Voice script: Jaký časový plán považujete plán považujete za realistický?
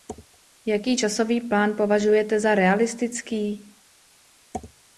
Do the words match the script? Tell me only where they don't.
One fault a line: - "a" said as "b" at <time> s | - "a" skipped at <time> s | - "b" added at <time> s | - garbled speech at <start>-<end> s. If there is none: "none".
- "plán považujete" skipped at 2.4 s